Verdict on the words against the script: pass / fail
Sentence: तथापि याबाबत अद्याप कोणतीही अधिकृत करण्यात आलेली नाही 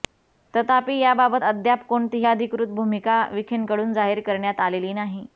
fail